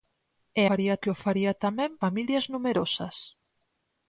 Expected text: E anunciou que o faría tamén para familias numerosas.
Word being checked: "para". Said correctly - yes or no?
no